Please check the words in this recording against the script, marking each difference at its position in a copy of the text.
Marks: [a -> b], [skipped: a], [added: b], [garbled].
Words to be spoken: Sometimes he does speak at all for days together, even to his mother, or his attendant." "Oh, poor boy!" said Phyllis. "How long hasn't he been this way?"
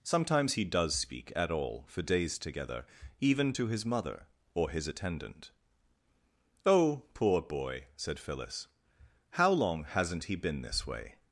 Sometimes he does speak at all for days together, even to his mother, or his attendant." "Oh, poor boy!" said Phyllis. "How long hasn't he been this way?"